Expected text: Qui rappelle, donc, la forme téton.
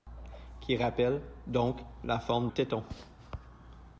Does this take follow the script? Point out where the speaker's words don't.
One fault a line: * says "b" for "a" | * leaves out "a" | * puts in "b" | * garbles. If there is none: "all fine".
all fine